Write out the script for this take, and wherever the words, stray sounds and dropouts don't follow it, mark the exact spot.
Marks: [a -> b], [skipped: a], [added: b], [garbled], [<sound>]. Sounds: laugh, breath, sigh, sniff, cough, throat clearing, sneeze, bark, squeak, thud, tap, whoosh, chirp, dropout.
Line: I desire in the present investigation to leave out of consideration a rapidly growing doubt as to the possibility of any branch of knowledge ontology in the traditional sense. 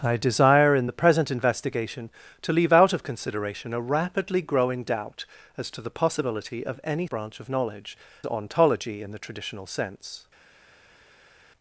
I desire in the present investigation to leave out of consideration a rapidly growing doubt as to the possibility of any branch of knowledge ontology in the traditional sense.